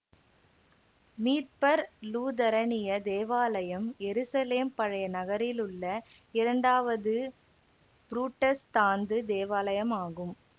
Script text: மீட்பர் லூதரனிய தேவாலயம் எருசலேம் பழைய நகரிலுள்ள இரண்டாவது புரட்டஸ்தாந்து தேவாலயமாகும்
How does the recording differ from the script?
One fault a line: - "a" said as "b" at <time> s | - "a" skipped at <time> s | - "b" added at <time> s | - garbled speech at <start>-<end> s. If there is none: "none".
none